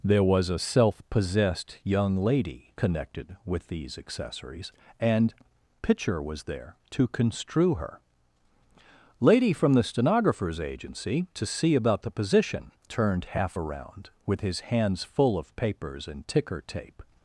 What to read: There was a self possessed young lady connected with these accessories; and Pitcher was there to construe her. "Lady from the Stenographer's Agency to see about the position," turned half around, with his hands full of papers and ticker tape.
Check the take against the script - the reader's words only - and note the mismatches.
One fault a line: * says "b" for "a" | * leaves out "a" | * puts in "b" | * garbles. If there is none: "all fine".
all fine